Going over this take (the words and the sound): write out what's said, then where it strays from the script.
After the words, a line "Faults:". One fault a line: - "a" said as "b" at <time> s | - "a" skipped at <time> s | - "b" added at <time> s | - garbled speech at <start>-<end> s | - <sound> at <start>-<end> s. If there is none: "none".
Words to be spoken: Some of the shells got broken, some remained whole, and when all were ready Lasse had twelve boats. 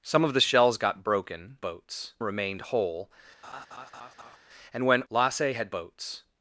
Some of the shells got broken, boats remained whole, and when Lasse had boats.
Faults:
- "some" said as "boats" at 1.6 s
- laugh at 3.4-4.4 s
- "all were ready" skipped at 5.0 s
- "twelve" skipped at 5.7 s